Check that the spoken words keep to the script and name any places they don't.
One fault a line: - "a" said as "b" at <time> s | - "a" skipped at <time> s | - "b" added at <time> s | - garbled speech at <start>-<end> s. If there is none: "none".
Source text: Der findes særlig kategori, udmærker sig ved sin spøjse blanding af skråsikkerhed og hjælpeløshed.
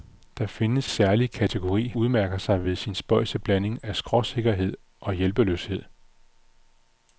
none